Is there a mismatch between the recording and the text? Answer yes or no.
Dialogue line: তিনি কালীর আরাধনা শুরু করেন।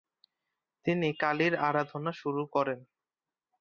no